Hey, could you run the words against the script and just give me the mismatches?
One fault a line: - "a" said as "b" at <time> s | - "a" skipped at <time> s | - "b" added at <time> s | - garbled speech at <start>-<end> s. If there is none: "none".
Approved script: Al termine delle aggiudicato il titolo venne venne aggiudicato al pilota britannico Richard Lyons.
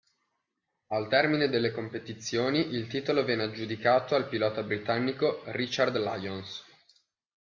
- "aggiudicato" said as "competizioni" at 1.7 s
- "venne" skipped at 3.4 s